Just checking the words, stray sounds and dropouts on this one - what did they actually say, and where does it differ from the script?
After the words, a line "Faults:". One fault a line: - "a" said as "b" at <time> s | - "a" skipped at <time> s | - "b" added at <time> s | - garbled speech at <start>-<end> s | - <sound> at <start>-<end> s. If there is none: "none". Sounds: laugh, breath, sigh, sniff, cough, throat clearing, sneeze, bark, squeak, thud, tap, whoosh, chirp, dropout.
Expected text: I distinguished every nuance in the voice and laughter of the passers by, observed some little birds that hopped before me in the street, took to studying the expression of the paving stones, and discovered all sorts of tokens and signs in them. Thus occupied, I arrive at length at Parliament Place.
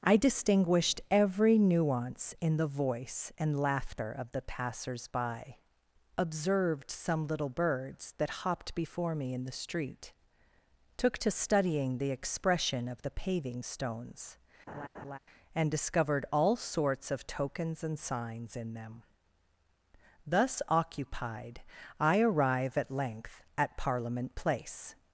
I distinguished every nuance in the voice and laughter of the passers by, observed some little birds that hopped before me in the street, took to studying the expression of the paving stones, and discovered all sorts of tokens and signs in them. Thus occupied, I arrive at length at Parliament Place.
Faults:
- laugh at 14.7-15.2 s